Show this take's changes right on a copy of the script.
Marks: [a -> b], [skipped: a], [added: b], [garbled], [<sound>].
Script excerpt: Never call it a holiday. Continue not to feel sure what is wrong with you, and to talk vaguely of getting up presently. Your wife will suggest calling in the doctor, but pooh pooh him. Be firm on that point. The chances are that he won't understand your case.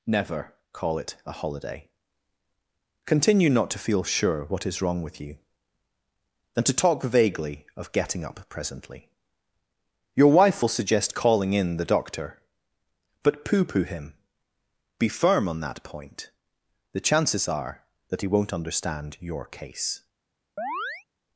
Never call it a holiday. Continue not to feel sure what is wrong with you, [and -> than] to talk vaguely of getting up presently. Your wife will suggest calling in the doctor, but pooh pooh him. Be firm on that point. The chances are that he won't understand your case. [chirp]